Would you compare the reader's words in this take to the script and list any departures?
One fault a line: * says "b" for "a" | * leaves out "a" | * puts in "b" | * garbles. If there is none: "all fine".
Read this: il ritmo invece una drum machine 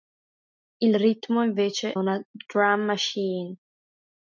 all fine